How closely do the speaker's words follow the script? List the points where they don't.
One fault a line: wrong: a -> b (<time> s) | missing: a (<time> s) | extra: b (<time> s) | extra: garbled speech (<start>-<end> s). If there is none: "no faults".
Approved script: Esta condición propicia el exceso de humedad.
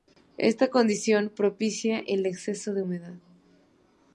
no faults